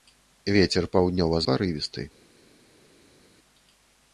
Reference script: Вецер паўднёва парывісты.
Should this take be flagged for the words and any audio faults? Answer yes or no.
no